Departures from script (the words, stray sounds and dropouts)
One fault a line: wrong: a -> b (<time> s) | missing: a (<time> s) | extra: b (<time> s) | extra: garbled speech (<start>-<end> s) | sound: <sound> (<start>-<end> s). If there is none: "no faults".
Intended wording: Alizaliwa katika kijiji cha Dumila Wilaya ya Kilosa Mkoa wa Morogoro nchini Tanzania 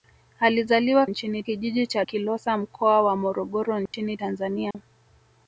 wrong: katika -> nchini (1.1 s)
missing: Dumila Wilaya ya (2.0 s)
sound: dropout (3.9-3.9 s)
sound: dropout (4.7-4.7 s)